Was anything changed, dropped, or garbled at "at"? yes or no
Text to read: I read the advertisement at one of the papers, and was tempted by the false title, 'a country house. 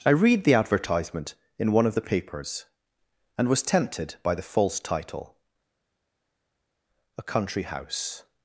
yes